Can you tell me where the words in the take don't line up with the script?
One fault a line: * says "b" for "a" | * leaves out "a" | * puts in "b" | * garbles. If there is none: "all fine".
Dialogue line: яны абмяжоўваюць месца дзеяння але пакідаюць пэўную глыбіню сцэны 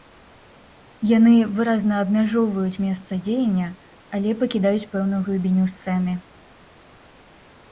* puts in "выразна"